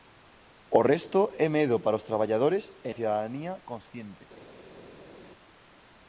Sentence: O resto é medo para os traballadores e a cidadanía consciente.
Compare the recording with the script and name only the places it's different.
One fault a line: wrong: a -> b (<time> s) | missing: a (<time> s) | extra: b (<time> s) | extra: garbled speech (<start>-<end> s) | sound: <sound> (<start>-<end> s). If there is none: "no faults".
no faults